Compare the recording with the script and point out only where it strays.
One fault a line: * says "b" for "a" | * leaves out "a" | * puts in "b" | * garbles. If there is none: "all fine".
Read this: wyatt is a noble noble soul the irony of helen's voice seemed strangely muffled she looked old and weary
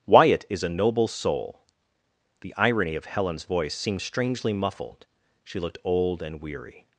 * leaves out "noble"